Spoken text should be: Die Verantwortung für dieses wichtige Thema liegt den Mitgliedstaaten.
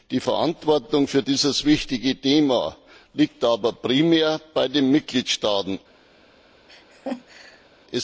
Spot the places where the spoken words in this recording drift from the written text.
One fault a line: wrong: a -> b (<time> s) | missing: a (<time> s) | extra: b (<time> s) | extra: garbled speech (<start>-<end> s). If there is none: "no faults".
extra: aber primär bei (3.4 s)